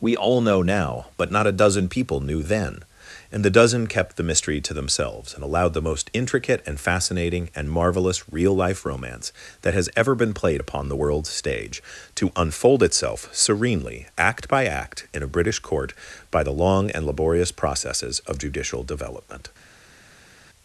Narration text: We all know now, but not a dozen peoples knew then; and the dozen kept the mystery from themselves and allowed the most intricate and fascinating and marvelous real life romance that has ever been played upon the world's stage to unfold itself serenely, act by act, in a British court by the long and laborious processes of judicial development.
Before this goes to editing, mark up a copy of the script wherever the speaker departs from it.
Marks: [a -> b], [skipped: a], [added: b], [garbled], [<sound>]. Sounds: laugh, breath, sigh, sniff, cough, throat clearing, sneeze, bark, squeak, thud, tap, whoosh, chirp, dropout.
We all know now, but not a dozen [peoples -> people] knew then; and the dozen kept the mystery [from -> to] themselves and allowed the most intricate and fascinating and marvelous real life romance that has ever been played upon the world's stage to unfold itself serenely, act by act, in a British court by the long and laborious processes of judicial development.